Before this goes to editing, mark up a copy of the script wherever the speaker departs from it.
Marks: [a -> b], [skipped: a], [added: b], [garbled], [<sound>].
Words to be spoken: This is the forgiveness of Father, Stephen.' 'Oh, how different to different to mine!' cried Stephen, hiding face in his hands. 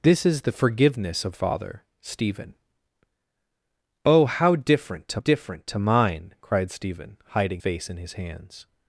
This is the forgiveness of Father, Stephen.' 'Oh, how different to different to mine!' cried Stephen, hiding face in his hands.